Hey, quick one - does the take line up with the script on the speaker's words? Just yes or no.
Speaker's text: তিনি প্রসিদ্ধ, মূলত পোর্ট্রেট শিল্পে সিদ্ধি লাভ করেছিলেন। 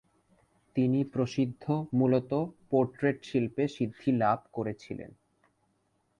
yes